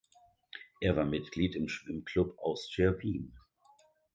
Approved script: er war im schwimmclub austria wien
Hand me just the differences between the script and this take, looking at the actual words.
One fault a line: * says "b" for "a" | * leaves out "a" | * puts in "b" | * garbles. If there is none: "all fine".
* puts in "mitglied"